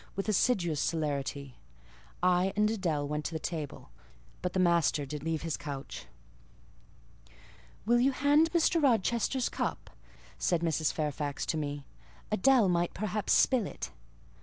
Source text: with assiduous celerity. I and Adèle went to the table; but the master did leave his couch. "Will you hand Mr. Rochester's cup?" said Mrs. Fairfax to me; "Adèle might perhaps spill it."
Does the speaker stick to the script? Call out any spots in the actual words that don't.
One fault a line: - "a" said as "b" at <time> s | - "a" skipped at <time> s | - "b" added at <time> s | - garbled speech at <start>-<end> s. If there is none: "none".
none